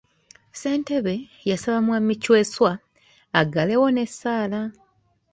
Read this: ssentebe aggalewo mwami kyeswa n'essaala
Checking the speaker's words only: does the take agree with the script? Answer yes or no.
no